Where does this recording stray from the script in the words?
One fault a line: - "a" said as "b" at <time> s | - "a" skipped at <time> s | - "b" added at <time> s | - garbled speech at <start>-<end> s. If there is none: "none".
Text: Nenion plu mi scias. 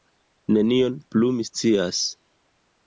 none